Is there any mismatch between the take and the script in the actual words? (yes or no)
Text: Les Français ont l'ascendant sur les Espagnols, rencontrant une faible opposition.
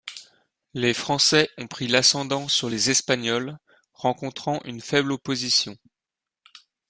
yes